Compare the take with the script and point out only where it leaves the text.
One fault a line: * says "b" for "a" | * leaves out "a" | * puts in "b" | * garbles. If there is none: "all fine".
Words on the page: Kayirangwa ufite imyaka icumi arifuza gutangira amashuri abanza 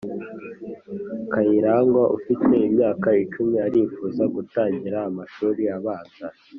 all fine